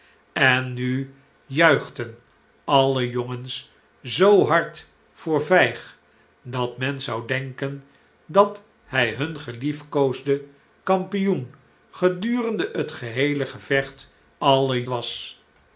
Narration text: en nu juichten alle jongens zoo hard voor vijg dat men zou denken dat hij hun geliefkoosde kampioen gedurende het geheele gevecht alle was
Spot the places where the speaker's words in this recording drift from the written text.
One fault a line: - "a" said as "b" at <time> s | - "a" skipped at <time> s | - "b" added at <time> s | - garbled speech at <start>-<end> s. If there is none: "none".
none